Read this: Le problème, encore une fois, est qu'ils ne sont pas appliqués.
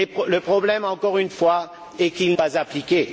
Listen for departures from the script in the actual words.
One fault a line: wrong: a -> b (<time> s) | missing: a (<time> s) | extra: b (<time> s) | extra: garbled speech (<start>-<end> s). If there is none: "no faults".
missing: ne sont (2.4 s)